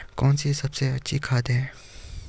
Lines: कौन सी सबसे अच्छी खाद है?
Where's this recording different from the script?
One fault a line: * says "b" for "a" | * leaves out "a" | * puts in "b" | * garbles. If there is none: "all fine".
all fine